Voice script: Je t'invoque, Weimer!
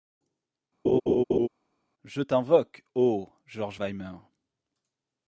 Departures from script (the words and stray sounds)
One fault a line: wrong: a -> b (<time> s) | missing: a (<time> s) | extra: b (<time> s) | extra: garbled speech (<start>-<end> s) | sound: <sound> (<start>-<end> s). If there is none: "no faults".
sound: laugh (0.8-1.5 s)
extra: ô George (2.9 s)